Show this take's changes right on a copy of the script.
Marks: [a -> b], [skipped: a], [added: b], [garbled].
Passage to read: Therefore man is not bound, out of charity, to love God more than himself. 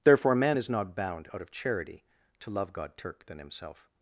Therefore man is not bound, out of charity, to love God [more -> turk] than himself.